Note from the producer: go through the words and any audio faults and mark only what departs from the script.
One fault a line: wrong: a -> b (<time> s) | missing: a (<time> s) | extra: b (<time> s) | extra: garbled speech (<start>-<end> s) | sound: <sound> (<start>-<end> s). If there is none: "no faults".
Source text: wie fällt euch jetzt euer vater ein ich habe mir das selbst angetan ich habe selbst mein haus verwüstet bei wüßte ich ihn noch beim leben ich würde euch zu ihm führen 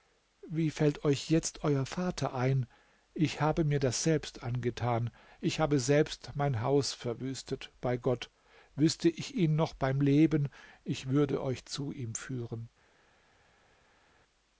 extra: gott (8.0 s)